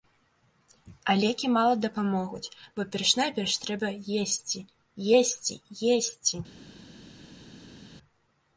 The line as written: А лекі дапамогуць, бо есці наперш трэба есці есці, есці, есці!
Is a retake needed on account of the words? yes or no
yes